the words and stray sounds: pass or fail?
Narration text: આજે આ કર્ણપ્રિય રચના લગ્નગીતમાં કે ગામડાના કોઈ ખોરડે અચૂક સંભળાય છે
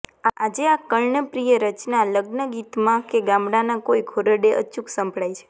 pass